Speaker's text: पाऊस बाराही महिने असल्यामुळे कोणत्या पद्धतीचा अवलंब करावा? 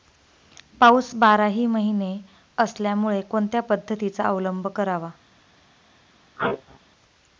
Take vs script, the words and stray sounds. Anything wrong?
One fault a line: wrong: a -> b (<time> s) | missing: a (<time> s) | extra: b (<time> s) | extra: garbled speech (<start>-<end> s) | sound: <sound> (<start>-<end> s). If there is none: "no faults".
sound: sneeze (6.4-6.8 s)